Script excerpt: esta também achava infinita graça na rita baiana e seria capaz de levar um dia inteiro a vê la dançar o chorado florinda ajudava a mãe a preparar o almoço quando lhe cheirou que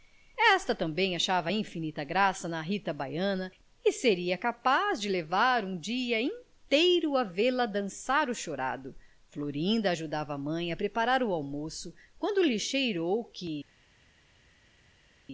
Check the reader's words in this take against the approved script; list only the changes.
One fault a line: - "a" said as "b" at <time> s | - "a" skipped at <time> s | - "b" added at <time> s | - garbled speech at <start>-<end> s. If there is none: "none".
none